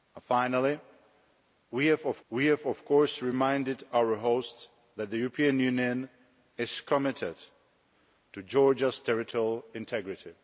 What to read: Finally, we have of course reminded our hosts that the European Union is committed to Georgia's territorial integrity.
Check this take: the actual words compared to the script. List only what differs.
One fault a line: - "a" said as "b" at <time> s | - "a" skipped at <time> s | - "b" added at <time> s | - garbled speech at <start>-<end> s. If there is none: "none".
- "we have of" added at 2.3 s